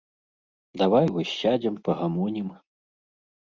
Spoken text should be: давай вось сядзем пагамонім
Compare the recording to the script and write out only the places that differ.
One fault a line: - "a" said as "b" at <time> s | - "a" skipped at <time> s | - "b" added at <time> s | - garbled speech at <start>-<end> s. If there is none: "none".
none